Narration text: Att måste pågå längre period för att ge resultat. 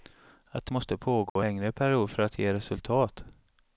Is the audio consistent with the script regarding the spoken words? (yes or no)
yes